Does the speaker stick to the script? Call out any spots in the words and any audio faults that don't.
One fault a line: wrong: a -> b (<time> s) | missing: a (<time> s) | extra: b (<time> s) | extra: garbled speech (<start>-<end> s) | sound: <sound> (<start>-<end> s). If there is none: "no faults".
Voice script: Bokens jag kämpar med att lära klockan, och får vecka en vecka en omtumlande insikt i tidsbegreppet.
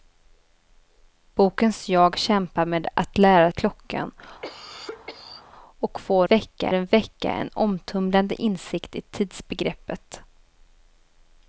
sound: cough (4.4-5.5 s)